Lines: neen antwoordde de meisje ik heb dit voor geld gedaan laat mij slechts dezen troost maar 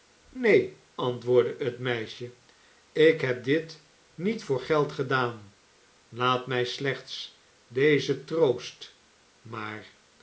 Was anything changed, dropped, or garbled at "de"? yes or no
yes